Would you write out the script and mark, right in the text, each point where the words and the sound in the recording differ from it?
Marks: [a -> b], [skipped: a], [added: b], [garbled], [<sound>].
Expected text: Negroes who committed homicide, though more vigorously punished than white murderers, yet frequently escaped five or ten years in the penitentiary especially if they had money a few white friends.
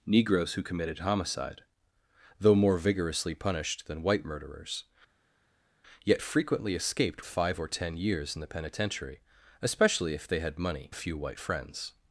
Negroes who committed homicide, though more vigorously punished than white murderers, yet frequently escaped five or ten years in the penitentiary especially if they had money a few white friends.